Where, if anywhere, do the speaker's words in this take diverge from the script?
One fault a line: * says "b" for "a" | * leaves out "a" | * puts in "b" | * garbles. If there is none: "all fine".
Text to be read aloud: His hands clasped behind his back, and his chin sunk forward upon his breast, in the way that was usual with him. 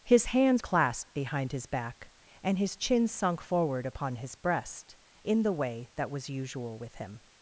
all fine